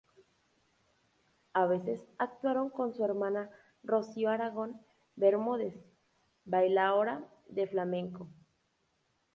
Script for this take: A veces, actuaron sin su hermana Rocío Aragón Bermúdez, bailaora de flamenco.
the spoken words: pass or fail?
fail